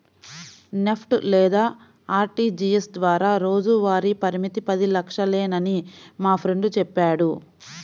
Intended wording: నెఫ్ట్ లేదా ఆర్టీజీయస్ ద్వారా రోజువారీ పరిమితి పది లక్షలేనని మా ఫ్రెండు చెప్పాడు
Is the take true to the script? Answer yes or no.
yes